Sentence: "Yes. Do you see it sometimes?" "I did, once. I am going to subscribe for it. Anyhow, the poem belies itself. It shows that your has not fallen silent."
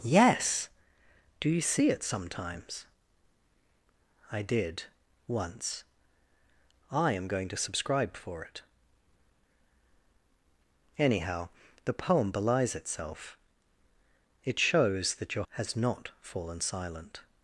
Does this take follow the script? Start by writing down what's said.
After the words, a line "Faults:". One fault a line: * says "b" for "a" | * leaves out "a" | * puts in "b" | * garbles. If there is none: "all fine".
"Yes. Do you see it sometimes?" "I did, once. I am going to subscribe for it. Anyhow, the poem belies itself. It shows that your has not fallen silent."
Faults:
all fine